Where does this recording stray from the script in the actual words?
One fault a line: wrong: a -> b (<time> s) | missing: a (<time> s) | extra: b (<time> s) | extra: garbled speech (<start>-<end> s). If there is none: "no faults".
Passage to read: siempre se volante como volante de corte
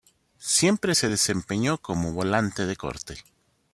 wrong: volante -> desempeñó (1.1 s)